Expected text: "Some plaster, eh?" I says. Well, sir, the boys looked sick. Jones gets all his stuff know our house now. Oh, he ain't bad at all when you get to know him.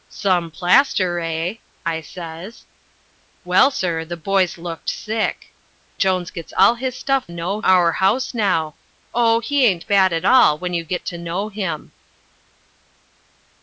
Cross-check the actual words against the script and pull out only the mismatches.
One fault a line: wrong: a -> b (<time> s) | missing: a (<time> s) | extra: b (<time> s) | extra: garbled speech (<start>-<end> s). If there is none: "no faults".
no faults